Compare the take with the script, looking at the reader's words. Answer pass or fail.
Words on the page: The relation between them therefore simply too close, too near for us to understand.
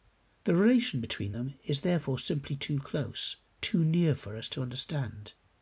fail